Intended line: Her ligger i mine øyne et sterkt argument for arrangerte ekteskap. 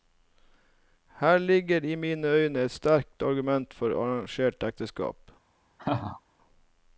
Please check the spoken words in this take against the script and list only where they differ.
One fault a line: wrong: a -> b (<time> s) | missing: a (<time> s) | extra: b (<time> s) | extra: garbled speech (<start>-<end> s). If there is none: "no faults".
no faults